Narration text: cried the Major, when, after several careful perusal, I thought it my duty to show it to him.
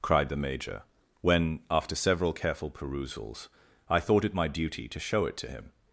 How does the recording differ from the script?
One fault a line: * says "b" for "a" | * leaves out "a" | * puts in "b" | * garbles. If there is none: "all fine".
* says "perusals" for "perusal"